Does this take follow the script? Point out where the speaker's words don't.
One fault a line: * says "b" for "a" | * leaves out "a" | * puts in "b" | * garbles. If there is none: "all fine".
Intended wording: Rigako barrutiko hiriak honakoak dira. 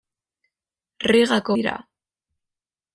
* leaves out "barrutiko hiriak honakoak"